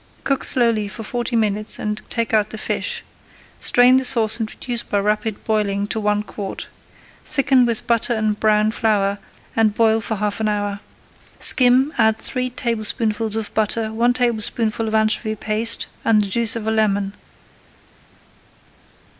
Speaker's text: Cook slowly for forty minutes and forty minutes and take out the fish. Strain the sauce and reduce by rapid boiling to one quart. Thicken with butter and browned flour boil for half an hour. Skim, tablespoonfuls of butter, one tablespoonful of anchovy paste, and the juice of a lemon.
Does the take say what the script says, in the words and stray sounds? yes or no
no